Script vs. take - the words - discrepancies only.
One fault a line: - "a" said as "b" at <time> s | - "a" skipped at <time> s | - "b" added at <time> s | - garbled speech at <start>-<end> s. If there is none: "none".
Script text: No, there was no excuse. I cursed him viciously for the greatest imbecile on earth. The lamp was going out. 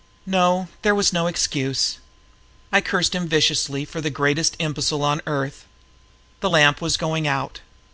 none